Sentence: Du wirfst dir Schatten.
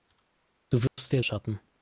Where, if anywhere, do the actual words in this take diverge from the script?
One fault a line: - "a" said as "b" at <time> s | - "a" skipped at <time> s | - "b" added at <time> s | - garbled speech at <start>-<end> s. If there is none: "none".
none